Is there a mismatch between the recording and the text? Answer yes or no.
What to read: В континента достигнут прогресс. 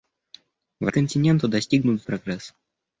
no